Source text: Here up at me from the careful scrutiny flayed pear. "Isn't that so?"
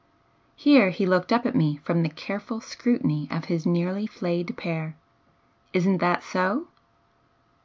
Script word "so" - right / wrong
right